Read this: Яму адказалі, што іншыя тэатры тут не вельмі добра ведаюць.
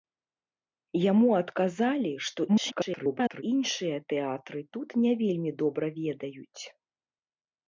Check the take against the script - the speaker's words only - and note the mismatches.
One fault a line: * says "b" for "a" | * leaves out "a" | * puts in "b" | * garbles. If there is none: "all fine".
* garbles